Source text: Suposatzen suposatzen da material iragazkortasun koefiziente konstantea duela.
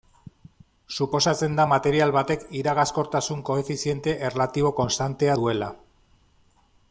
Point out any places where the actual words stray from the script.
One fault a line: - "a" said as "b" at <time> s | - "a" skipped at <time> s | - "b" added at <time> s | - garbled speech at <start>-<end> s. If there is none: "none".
- "suposatzen" skipped at 1.6 s
- "batek" added at 2.2 s
- "erlatibo" added at 4.3 s